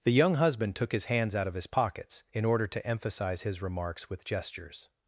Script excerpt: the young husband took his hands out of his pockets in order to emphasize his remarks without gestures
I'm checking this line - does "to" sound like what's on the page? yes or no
yes